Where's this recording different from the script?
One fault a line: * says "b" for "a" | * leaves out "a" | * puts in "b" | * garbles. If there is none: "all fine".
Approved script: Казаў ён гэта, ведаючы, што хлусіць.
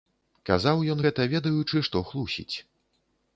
all fine